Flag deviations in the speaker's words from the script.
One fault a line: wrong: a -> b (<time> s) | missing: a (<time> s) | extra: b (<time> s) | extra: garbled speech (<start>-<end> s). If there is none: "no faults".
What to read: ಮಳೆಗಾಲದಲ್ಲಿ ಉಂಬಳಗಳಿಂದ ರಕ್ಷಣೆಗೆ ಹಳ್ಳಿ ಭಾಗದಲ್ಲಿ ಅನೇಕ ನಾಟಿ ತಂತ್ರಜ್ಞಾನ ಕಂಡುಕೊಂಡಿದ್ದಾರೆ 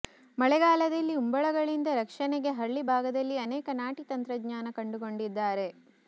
no faults